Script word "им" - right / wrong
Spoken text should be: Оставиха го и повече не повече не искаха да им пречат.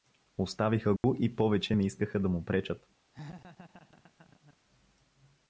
wrong